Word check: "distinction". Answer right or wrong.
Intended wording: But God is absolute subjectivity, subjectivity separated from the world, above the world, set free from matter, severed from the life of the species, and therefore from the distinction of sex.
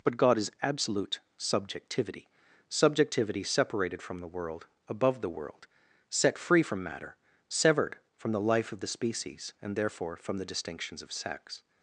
wrong